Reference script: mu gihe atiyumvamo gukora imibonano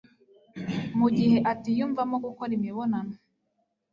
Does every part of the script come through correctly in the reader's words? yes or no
yes